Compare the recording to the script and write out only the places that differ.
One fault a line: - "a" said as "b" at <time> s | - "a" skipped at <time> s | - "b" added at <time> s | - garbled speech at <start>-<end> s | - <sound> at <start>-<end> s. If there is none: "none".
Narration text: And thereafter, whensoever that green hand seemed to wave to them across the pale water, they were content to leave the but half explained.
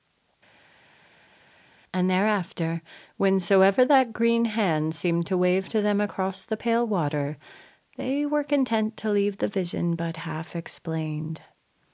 - "vision" added at 9.5 s